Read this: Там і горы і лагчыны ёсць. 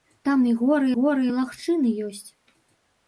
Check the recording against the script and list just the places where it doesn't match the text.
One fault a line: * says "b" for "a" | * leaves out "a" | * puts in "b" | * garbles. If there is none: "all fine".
* puts in "горы"